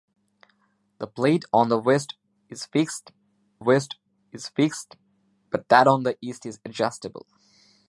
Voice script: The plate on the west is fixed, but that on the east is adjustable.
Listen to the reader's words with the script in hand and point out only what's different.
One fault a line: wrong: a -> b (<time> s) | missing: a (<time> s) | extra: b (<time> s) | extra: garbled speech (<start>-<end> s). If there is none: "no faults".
extra: west is fixed (3.6 s)